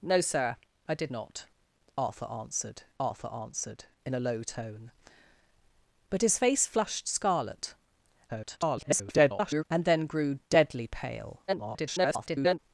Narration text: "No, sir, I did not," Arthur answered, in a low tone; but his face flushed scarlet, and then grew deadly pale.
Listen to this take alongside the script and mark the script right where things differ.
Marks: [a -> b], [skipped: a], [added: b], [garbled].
"No, sir, I did not," Arthur answered, [added: Arthur answered] in a low tone; but his face flushed scarlet, [garbled] and then grew deadly pale. [garbled]